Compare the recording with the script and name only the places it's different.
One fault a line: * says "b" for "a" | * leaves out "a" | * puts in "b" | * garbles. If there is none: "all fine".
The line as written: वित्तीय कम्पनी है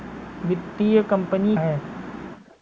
all fine